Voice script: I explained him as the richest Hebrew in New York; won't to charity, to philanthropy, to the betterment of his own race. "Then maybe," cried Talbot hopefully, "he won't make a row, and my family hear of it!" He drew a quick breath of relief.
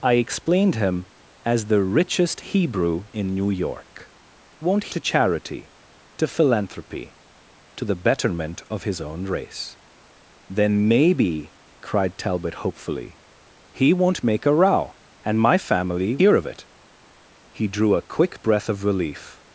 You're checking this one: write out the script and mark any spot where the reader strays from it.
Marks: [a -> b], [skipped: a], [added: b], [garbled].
I explained him as the richest Hebrew in New York; won't to charity, to philanthropy, to the betterment of his own race. "Then maybe," cried Talbot hopefully, "he won't make a row, and my family hear of it!" He drew a quick breath of relief.